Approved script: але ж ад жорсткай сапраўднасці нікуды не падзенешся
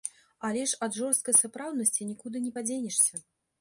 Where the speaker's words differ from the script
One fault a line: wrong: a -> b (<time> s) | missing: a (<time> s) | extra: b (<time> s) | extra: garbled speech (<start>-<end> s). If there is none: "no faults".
no faults